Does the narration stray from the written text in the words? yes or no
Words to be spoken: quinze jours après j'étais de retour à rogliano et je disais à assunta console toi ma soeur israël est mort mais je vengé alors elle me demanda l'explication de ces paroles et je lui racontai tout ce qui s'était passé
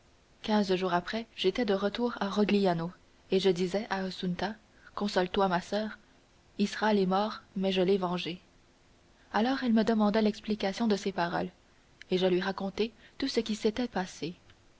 yes